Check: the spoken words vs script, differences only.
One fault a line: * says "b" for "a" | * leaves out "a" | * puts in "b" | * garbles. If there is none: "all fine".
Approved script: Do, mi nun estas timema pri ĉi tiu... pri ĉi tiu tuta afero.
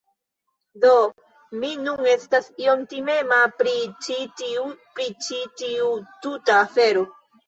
* puts in "iom"